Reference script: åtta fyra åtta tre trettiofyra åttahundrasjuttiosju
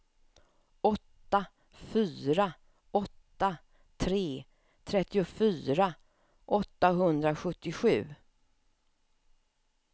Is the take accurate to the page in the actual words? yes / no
yes